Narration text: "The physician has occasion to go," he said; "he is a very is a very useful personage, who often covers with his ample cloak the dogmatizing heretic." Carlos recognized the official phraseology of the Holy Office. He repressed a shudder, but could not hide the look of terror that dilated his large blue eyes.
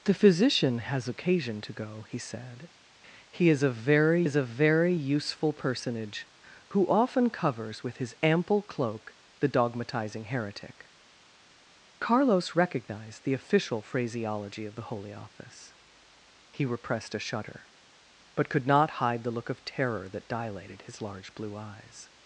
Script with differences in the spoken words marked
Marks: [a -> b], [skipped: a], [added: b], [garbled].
"The physician has occasion to go," he said; "he is a very is a very useful personage, who often covers with his ample cloak the dogmatizing heretic." Carlos recognized the official phraseology of the Holy Office. He repressed a shudder, but could not hide the look of terror that dilated his large blue eyes.